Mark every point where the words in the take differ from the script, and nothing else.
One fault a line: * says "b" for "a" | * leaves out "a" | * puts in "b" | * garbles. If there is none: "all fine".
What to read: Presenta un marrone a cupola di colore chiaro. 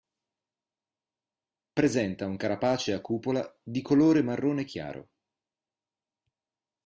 * says "carapace" for "marrone"
* puts in "marrone"